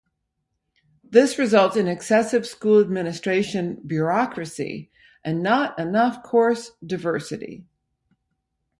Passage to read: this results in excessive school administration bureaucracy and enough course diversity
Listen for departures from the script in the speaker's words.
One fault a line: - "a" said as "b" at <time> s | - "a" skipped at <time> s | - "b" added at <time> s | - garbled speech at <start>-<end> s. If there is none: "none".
- "not" added at 5.4 s